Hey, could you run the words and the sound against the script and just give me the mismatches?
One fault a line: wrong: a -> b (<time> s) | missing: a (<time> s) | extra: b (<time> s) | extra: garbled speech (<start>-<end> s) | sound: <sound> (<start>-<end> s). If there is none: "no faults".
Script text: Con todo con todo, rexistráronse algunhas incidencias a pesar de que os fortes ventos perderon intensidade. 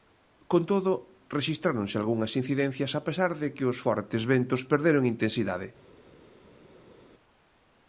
missing: con todo (0.9 s)